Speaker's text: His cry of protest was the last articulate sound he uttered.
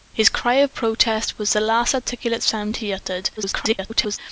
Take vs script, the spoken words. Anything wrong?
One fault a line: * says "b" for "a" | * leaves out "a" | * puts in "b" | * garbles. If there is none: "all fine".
* garbles